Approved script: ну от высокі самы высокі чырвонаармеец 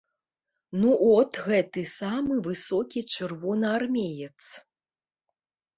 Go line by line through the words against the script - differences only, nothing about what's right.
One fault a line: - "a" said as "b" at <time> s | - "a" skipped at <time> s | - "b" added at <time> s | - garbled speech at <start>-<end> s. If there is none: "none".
- "высокі" said as "гэты" at 1.5 s